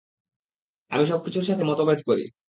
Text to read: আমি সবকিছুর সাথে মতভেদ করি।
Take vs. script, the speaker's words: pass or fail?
pass